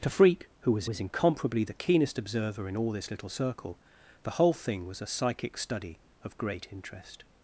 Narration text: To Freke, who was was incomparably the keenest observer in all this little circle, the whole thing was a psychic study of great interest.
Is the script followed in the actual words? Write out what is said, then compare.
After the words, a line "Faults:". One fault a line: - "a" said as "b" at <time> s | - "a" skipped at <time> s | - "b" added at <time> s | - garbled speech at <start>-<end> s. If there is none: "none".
To Freke, who was was incomparably the keenest observer in all this little circle, the whole thing was a psychic study of great interest.
Faults:
none